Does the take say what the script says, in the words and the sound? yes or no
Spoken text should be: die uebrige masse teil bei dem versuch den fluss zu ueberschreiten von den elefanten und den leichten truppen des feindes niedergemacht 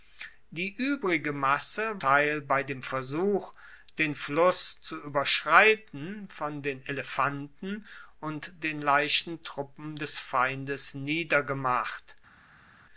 yes